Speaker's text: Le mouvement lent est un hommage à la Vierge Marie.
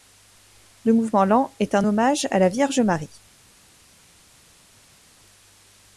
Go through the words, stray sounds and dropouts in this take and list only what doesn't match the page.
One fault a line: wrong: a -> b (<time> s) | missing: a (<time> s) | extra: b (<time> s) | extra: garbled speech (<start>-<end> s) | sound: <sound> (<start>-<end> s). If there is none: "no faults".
no faults